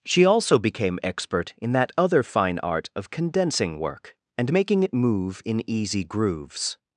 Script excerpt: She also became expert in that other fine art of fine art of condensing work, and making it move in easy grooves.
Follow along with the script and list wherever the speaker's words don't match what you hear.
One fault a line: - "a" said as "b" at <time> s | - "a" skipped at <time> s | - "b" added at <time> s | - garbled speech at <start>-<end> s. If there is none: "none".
- "fine art of" skipped at 3.1 s